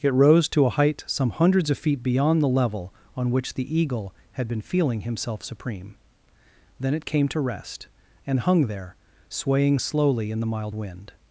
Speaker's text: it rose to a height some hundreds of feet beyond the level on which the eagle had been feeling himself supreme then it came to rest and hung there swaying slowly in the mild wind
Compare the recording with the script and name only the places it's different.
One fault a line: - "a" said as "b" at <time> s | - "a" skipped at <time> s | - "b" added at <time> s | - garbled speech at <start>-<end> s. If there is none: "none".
none